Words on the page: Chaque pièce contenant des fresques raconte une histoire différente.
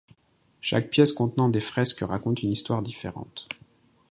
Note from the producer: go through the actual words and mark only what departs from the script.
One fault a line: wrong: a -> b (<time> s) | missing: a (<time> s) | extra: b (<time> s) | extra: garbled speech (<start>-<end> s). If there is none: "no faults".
no faults